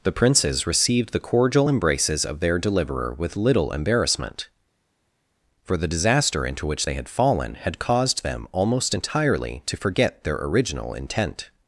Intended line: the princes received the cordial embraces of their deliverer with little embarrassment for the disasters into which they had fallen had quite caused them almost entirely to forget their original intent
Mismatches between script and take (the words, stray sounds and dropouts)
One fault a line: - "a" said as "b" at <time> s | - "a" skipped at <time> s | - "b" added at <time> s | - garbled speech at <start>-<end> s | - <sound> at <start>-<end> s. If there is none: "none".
- "disasters" said as "disaster" at 5.9 s
- "quite" skipped at 7.8 s